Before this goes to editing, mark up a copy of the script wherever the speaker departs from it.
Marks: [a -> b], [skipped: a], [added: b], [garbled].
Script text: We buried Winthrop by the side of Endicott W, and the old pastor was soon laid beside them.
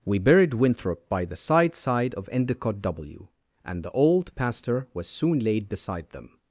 We buried Winthrop by the side [added: side] of Endicott W, and the old pastor was soon laid beside them.